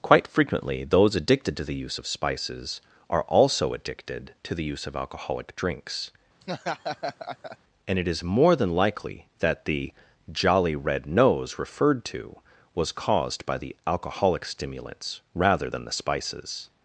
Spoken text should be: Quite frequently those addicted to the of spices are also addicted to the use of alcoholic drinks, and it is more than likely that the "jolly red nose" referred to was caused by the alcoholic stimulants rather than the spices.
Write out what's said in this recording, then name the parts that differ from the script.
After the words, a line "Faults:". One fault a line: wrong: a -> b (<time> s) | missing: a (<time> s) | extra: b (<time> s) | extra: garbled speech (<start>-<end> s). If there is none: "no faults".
Quite frequently those addicted to the use of spices are also addicted to the use of alcoholic drinks, and it is more than likely that the "jolly red nose" referred to was caused by the alcoholic stimulants rather than the spices.
Faults:
extra: use (1.8 s)